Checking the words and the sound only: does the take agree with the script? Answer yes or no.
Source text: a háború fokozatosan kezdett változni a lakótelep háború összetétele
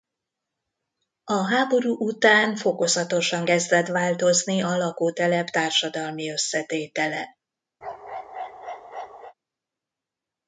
no